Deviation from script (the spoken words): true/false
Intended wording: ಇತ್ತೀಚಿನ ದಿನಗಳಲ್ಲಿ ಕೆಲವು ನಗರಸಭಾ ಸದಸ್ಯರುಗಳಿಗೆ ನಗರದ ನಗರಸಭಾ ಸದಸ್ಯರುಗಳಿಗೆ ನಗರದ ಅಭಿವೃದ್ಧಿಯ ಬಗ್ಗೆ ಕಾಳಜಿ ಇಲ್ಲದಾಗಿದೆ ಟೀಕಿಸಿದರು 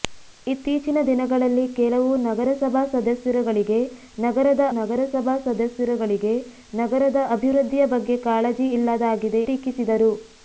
false